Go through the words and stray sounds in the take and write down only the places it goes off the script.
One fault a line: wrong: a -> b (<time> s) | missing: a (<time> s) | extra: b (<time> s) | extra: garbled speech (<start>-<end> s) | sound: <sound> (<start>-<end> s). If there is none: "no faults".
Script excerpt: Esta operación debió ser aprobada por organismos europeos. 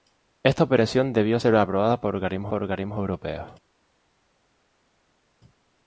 extra: por organismos (2.5 s)